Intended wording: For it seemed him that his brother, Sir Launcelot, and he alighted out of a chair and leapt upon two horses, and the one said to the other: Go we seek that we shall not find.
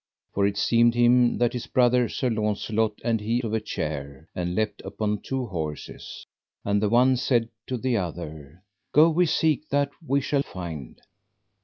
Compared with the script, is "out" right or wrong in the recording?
wrong